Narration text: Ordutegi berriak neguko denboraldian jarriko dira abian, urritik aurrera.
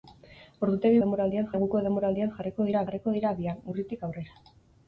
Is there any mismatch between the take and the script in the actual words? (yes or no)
yes